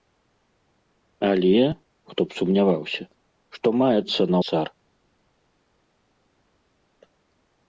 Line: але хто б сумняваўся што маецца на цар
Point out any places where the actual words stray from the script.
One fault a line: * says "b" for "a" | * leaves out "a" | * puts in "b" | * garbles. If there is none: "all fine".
all fine